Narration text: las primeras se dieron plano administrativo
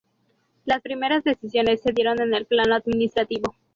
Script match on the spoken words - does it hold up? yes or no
no